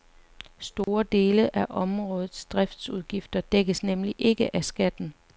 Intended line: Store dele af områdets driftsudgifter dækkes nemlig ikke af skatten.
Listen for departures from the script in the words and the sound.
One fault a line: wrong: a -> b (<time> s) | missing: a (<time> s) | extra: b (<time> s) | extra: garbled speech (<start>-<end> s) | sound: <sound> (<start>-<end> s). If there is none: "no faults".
sound: dropout (0.8-0.9 s)